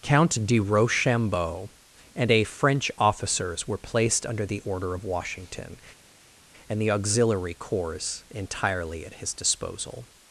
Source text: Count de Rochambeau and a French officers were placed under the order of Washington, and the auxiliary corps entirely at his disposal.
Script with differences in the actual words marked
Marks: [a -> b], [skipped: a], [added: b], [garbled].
Count de Rochambeau and a French officers were placed under the order of Washington, and the auxiliary corps entirely at his disposal.